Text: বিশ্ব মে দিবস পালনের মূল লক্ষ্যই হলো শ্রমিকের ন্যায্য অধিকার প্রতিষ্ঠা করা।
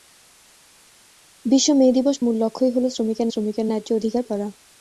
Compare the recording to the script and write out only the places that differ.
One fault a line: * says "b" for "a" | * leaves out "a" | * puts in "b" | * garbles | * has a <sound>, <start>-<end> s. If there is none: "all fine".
* leaves out "পালনের"
* puts in "শ্রমিকের"
* leaves out "প্রতিষ্ঠা"